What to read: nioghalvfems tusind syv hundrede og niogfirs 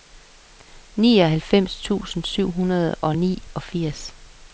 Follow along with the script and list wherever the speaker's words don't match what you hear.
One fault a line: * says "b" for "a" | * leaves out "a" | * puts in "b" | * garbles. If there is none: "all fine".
all fine